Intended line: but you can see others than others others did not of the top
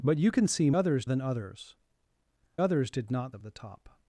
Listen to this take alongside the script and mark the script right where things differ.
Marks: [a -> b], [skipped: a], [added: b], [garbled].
but you can see others than others others did not of the top